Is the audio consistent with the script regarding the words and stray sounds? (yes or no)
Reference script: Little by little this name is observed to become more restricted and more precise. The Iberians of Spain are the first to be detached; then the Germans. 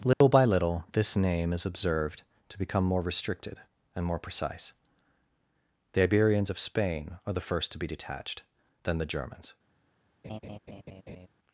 no